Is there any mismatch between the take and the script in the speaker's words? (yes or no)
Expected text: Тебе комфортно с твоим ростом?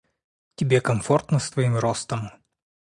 no